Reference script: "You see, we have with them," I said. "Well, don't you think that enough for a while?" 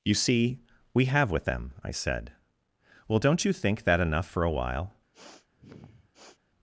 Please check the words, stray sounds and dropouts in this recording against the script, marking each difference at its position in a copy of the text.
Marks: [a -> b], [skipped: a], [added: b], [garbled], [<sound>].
"You see, we have with them," I said. "Well, don't you think that enough for a while?" [sniff]